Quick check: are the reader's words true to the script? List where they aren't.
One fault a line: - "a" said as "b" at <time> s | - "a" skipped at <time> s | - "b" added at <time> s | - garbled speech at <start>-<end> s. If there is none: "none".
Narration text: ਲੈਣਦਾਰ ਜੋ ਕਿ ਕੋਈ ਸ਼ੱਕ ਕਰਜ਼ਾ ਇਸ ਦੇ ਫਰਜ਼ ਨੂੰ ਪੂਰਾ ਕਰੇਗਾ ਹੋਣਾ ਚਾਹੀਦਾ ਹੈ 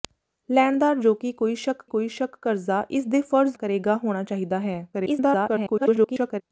- "ਕੋਈ ਸ਼ੱਕ" added at 1.9 s
- "ਨੂੰ ਪੂਰਾ" skipped at 3.6 s
- garbled speech at 4.9-6.4 s